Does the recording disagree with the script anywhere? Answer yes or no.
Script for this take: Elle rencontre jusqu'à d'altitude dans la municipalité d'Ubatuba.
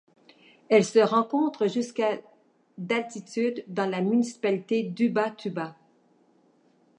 yes